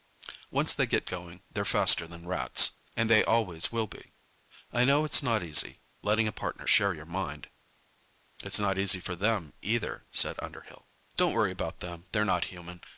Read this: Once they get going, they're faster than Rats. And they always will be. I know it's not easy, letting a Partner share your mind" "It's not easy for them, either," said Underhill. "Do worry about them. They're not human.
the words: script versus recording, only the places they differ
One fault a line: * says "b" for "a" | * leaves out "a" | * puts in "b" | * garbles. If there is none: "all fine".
* says "Don't" for "Do"